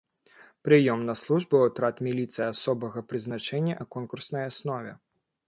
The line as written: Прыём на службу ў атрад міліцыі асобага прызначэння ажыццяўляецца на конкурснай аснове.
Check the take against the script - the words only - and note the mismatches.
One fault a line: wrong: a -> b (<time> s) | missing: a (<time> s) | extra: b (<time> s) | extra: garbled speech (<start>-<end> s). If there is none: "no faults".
missing: ажыццяўляецца (3.8 s)